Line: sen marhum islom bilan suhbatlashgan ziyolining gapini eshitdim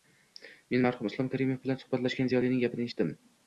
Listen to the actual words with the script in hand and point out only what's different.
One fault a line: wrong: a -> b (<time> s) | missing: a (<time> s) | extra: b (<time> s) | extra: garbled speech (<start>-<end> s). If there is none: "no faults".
wrong: sen -> men (0.7 s)
extra: karimov (1.3 s)